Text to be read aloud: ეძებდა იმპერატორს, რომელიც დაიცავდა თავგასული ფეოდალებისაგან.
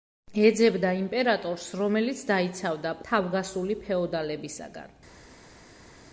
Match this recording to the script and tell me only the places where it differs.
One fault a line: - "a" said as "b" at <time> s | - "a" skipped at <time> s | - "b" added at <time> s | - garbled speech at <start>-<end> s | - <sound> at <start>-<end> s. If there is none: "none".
none